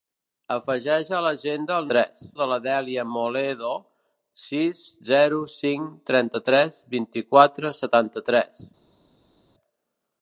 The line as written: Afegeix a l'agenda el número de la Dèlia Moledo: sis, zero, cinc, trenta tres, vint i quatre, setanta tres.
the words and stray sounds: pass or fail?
fail